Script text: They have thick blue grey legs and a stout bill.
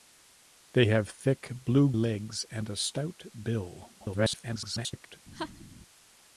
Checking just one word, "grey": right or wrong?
wrong